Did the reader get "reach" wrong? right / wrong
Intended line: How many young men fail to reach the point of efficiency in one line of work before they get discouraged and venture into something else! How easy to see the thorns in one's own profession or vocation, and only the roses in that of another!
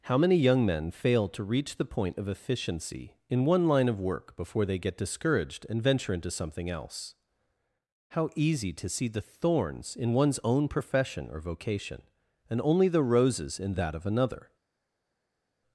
right